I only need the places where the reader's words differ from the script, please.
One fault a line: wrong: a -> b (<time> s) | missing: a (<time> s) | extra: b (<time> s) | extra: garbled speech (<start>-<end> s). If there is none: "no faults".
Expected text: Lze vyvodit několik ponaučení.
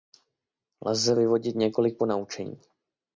no faults